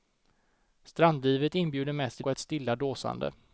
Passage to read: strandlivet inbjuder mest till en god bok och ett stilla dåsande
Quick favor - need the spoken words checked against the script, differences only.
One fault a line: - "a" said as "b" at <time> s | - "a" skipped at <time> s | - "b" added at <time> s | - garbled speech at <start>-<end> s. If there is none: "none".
- "en god bok" skipped at 2.3 s